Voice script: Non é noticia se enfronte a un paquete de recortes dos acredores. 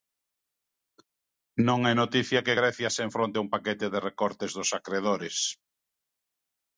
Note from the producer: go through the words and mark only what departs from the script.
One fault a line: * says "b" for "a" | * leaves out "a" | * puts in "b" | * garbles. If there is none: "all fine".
* puts in "que Grecia"